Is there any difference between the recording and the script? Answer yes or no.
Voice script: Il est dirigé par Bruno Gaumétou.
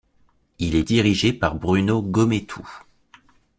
no